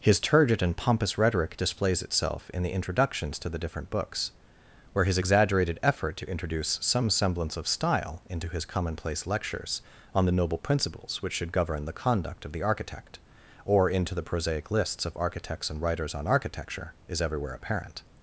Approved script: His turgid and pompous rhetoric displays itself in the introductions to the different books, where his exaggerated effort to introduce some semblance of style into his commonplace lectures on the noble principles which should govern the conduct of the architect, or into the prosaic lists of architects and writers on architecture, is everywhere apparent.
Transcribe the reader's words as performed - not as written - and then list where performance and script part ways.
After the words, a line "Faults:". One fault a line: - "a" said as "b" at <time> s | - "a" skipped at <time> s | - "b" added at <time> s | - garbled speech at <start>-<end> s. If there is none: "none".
His turgid and pompous rhetoric displays itself in the introductions to the different books, where his exaggerated effort to introduce some semblance of style into his commonplace lectures on the noble principles which should govern the conduct of the architect, or into the prosaic lists of architects and writers on architecture, is everywhere apparent.
Faults:
none